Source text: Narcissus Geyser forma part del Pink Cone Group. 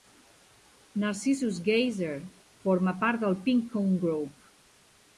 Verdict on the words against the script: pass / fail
pass